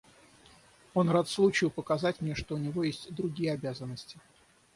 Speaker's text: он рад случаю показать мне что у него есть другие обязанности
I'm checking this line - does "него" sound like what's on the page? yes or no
yes